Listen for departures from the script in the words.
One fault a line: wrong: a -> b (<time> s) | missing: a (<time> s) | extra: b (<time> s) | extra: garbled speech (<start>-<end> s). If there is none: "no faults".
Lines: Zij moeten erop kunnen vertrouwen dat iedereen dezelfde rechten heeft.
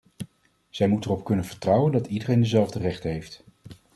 no faults